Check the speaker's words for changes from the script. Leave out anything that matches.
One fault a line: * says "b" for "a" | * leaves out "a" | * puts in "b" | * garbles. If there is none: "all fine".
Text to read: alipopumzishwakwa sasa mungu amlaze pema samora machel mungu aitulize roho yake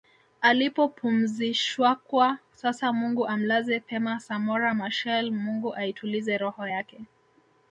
all fine